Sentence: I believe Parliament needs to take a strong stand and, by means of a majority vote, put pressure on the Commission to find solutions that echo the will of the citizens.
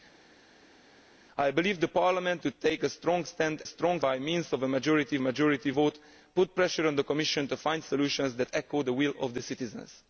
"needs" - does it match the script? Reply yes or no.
no